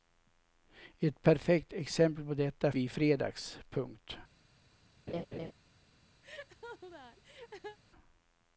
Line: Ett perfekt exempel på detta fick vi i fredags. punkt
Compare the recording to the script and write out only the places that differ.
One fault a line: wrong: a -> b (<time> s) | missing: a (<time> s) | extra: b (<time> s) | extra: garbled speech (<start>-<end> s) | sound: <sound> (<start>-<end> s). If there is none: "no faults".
missing: fick (2.7 s)
sound: laugh (5.1-5.5 s)
sound: laugh (6.2-7.8 s)